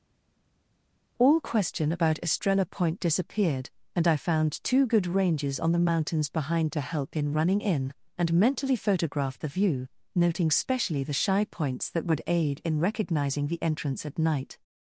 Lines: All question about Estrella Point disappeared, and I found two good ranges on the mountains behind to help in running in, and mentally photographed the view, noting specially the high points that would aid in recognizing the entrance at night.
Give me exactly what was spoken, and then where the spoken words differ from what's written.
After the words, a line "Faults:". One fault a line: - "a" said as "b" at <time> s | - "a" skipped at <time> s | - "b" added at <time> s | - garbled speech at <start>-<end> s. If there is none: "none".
All question about Estrella Point disappeared, and I found two good ranges on the mountains behind to help in running in, and mentally photographed the view, noting specially the shy points that would aid in recognizing the entrance at night.
Faults:
- "high" said as "shy" at 11.1 s